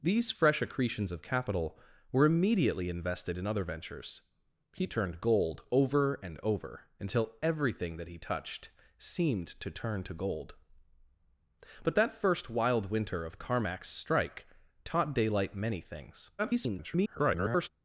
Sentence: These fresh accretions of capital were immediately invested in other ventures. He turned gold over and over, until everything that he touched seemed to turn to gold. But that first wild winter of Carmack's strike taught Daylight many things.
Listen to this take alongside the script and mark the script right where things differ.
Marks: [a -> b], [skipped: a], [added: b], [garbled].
These fresh accretions of capital were immediately invested in other ventures. He turned gold over and over, until everything that he touched seemed to turn to gold. But that first wild winter of Carmack's strike taught Daylight many things. [garbled]